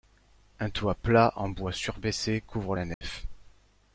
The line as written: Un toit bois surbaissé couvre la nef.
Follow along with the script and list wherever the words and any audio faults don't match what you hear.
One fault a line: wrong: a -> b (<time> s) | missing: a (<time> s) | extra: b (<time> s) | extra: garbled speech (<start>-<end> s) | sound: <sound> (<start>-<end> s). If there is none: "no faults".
extra: plat en (0.9 s)
sound: dropout (2.9-3.0 s)